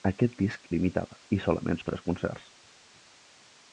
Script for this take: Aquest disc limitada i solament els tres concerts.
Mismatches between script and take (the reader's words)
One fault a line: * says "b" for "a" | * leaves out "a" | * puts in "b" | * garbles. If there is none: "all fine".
all fine